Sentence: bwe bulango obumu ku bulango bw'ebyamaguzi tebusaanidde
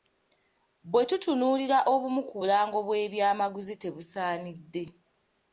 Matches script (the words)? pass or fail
fail